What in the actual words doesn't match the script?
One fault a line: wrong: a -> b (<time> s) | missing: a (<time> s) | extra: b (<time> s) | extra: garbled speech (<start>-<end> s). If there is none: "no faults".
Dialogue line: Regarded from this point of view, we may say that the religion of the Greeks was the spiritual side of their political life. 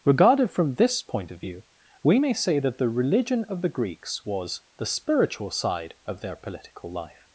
no faults